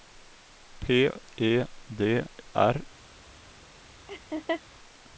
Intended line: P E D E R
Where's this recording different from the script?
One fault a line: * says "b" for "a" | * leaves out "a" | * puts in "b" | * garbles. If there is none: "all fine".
* leaves out "E"